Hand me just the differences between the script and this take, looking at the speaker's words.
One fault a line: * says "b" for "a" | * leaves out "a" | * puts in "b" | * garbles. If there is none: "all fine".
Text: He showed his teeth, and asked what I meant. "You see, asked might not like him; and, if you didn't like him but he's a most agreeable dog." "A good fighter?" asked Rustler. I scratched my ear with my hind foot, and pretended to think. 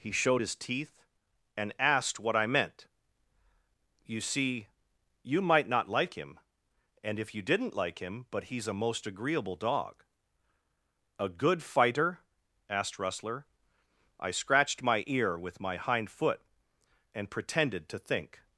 * says "you" for "asked"